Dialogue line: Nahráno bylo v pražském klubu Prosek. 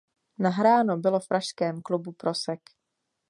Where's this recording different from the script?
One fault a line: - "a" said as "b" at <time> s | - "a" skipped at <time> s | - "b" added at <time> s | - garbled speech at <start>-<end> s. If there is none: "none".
none